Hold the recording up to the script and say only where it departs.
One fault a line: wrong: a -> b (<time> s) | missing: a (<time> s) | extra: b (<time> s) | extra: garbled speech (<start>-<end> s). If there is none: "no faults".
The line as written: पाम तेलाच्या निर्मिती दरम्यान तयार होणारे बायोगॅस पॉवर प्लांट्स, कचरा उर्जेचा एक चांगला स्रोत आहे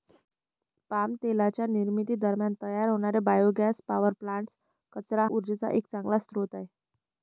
no faults